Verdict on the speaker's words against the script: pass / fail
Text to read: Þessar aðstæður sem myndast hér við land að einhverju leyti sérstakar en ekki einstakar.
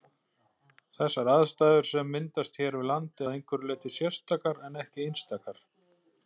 pass